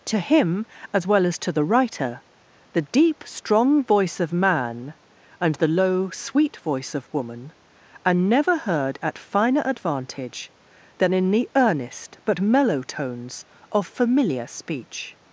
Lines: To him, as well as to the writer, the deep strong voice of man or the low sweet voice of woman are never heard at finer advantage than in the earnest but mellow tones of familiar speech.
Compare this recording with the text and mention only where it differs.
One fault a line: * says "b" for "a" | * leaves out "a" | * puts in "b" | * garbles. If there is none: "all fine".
* says "and" for "or"